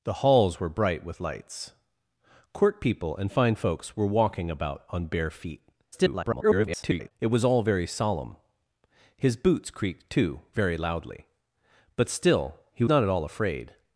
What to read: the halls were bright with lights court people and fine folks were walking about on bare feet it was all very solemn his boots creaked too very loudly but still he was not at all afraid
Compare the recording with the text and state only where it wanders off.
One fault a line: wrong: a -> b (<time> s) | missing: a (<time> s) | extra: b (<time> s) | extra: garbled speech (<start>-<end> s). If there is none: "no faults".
extra: garbled speech (5.9-7.1 s)
missing: was (12.8 s)